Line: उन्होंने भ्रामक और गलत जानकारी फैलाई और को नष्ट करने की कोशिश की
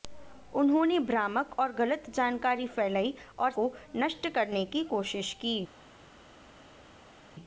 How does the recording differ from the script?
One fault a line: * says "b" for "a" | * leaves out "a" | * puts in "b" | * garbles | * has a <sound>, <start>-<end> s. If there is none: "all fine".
all fine